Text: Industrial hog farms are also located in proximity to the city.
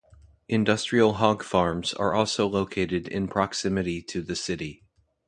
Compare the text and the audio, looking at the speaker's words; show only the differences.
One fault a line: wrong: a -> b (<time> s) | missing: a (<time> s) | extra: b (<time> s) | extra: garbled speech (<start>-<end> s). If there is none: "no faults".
no faults